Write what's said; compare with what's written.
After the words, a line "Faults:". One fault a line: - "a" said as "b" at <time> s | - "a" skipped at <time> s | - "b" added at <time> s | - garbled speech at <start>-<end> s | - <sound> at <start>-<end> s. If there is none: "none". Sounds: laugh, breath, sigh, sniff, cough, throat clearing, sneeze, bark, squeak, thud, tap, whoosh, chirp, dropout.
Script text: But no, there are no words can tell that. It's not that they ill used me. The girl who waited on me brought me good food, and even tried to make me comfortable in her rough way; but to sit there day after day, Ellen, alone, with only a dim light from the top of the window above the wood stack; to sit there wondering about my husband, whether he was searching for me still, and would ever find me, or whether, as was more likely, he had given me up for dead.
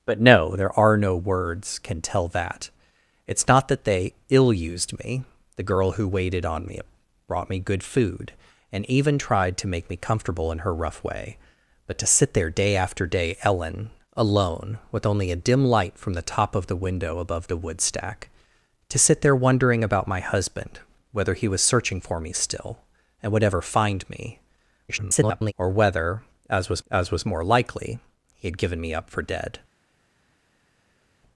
But no, there are no words can tell that. It's not that they ill used me. The girl who waited on me brought me good food, and even tried to make me comfortable in her rough way; but to sit there day after day, Ellen, alone, with only a dim light from the top of the window above the wood stack; to sit there wondering about my husband, whether he was searching for me still, and would ever find me, [garbled] or whether, as was as was more likely, he had given me up for dead.
Faults:
- garbled speech at 24.9-25.5 s
- "as was" added at 26.9 s